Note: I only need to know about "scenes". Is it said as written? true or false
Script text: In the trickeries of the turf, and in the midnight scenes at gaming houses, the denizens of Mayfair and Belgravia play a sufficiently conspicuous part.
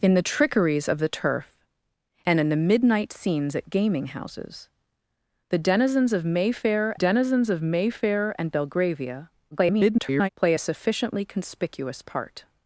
true